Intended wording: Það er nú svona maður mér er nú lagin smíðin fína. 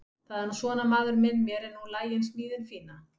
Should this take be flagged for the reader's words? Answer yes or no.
yes